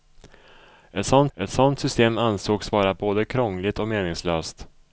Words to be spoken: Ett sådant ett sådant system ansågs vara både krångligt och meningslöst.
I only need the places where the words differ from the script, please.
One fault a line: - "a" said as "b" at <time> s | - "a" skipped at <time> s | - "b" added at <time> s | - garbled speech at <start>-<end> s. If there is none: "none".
none